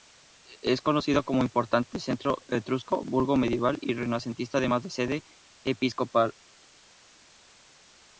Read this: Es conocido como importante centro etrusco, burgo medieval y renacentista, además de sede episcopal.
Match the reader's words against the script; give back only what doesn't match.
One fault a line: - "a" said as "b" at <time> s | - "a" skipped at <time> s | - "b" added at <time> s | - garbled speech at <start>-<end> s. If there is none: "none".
none